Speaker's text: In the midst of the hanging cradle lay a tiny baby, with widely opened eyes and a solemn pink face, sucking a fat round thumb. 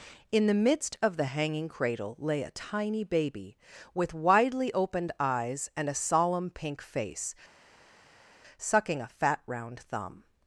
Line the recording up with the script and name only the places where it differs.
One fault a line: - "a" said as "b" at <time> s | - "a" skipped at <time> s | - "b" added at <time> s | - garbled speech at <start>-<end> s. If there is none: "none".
none